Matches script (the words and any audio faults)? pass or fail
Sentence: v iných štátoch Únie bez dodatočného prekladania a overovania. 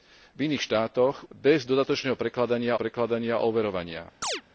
fail